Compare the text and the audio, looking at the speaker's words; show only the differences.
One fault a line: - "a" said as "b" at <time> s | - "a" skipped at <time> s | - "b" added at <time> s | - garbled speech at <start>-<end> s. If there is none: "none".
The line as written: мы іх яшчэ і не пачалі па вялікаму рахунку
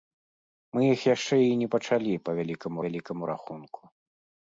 - "вялікаму" added at 2.8 s